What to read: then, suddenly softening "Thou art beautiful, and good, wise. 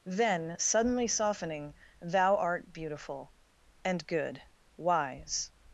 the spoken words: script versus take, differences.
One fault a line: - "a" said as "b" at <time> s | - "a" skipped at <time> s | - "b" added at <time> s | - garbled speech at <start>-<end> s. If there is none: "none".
none